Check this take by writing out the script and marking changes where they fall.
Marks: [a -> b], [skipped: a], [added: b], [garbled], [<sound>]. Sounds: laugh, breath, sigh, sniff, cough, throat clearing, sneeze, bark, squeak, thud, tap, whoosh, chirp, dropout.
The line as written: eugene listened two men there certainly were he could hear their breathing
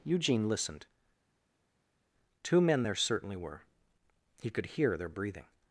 eugene listened two men there certainly were he could hear their breathing